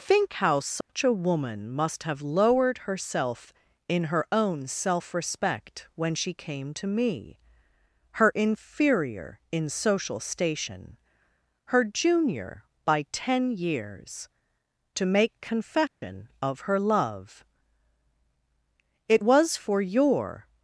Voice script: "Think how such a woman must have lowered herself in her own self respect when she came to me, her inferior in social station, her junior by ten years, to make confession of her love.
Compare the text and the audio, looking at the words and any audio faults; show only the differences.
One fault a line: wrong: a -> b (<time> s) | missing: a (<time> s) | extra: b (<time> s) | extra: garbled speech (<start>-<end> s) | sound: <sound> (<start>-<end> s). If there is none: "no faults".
sound: dropout (0.8-0.9 s)
sound: dropout (15.9-16.0 s)
extra: It was for your (19.1 s)